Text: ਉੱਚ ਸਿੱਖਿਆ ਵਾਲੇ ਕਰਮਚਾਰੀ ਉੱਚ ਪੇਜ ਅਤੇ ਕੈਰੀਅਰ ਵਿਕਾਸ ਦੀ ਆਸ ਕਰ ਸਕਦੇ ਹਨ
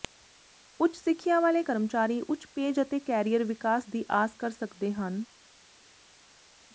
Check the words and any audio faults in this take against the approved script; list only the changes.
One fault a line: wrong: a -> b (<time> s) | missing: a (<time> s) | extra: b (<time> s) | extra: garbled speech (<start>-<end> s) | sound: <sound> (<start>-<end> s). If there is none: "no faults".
no faults